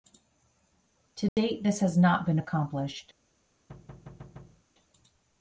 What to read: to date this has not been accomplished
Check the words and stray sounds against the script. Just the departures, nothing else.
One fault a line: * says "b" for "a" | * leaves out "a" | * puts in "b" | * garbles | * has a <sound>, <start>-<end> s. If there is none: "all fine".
* has a dropout, 1.3-1.4 s
* has a thud, 3.7-4.6 s